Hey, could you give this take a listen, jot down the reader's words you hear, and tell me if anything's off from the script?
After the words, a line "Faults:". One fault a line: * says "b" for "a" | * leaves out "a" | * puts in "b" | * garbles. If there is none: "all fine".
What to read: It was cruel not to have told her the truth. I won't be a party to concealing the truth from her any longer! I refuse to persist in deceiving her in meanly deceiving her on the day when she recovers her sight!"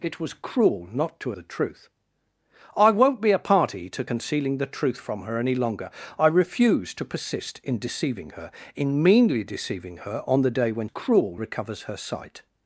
It was cruel not to the truth. I won't be a party to concealing the truth from her any longer! I refuse to persist in deceiving her in meanly deceiving her on the day when cruel recovers her sight!"
Faults:
* leaves out "have told her"
* says "cruel" for "she"